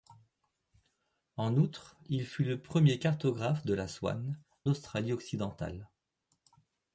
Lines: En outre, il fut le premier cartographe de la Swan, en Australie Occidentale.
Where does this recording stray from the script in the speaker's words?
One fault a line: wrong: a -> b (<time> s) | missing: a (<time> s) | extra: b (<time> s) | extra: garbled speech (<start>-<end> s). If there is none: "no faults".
missing: en (4.4 s)